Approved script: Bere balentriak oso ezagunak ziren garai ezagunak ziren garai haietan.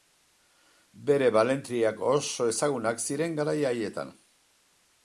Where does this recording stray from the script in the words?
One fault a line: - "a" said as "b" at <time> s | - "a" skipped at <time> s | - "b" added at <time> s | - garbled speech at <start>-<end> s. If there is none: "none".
- "ezagunak ziren garai" skipped at 3.6 s